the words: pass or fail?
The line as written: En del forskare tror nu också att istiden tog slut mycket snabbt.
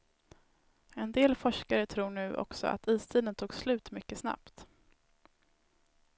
pass